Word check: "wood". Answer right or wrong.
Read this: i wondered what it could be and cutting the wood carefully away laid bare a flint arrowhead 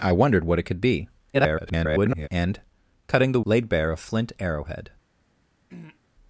wrong